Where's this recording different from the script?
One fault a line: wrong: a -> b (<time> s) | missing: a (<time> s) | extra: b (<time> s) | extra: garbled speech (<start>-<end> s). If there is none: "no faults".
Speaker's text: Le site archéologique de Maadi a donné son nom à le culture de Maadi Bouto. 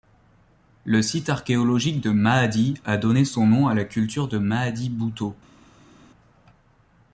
wrong: le -> la (3.8 s)